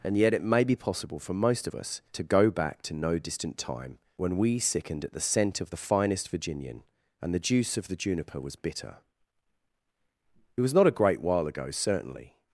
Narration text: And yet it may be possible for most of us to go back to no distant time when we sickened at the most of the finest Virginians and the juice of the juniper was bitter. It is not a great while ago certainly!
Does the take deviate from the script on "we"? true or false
false